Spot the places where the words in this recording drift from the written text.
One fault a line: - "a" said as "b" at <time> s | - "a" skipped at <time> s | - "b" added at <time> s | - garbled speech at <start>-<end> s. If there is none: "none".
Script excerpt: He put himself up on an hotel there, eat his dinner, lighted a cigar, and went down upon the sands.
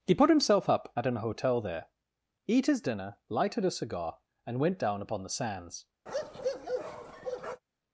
- "on" said as "at" at 0.9 s